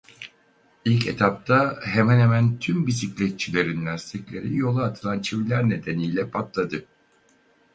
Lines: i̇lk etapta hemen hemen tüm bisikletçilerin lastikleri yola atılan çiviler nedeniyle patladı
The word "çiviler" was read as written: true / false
true